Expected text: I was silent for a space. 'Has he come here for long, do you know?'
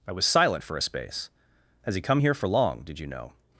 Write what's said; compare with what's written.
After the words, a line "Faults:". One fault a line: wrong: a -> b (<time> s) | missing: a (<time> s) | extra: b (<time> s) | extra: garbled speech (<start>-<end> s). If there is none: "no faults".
I was silent for a space. 'Has he come here for long, did you know?'
Faults:
wrong: do -> did (2.8 s)